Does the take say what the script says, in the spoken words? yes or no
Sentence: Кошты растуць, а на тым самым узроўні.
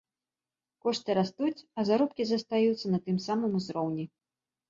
no